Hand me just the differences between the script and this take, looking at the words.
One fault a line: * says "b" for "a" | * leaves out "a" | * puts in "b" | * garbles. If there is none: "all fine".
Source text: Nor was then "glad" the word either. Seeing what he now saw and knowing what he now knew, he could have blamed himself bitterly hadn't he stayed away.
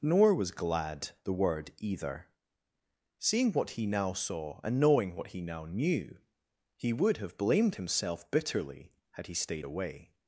* leaves out "then"
* says "would" for "could"
* says "had" for "hadn't"